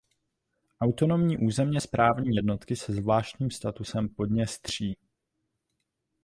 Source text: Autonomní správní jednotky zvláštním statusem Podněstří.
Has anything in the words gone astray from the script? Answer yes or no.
yes